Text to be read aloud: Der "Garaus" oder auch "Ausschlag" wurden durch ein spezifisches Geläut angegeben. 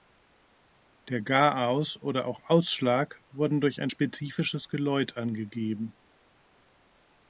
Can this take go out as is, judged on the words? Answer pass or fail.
pass